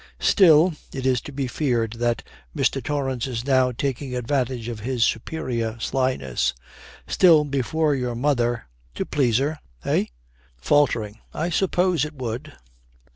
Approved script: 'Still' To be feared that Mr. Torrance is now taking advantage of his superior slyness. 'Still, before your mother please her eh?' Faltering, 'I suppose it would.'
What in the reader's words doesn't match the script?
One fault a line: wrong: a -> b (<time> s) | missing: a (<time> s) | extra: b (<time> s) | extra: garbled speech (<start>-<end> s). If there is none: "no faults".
extra: It is (0.9 s)
extra: to (8.9 s)